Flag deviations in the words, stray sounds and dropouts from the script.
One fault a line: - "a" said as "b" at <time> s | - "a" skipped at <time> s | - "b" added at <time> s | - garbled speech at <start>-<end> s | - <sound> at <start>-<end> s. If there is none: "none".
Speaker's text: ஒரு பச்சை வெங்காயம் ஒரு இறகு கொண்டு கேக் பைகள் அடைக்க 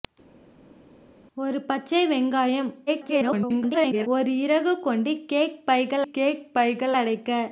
- garbled speech at 2.9-4.1 s
- "கேக் பைகள்" added at 6.1 s